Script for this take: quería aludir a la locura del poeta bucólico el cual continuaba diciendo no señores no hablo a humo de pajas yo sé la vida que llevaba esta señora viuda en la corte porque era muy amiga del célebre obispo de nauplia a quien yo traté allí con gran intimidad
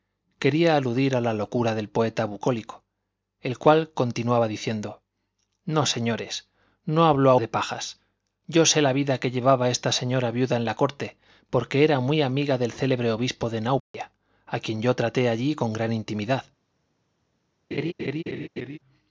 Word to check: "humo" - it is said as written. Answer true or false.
false